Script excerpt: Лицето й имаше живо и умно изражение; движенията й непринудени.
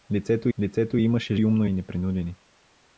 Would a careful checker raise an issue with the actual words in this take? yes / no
yes